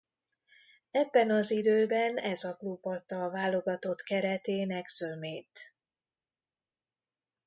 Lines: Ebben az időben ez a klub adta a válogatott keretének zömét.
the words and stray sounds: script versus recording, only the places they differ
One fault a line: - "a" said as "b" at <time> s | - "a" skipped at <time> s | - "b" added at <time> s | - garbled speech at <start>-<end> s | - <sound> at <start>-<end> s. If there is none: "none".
none